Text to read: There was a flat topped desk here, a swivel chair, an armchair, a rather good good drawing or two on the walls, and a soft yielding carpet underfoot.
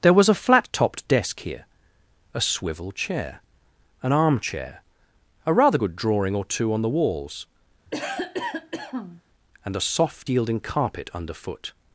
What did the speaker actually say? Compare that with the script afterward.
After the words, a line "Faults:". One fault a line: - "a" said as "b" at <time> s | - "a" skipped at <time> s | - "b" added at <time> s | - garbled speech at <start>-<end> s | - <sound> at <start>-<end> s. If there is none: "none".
There was a flat topped desk here, a swivel chair, an armchair, a rather good drawing or two on the walls, and a soft yielding carpet underfoot.
Faults:
- "good" skipped at 6.0 s
- cough at 7.9-9.2 s